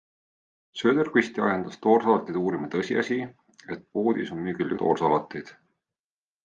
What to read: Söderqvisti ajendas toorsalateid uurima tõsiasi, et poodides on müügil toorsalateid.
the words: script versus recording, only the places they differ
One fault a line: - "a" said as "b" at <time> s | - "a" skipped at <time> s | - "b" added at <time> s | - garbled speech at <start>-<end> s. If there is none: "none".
none